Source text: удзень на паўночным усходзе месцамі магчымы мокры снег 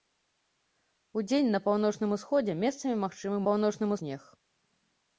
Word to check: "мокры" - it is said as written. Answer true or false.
false